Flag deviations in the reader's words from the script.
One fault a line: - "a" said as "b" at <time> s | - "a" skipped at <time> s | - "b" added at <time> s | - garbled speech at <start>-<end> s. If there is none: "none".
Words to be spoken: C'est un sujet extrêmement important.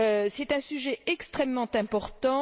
none